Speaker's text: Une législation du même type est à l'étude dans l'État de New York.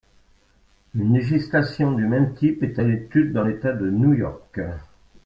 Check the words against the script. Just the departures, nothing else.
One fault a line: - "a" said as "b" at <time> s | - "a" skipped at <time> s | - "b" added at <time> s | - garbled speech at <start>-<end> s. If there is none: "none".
none